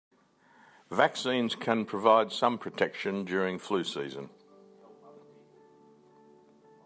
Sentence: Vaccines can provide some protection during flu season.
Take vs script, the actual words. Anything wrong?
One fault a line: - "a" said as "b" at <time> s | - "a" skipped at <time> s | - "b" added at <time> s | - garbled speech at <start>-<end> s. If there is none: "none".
none